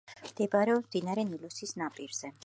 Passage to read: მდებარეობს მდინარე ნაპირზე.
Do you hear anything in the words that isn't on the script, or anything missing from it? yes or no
yes